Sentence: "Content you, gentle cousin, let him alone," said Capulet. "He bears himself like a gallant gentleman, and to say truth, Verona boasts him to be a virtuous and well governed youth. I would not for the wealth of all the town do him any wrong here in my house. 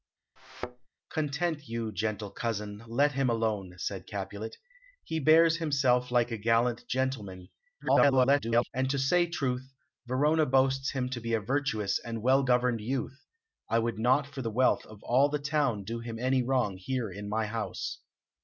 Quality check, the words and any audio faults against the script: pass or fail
fail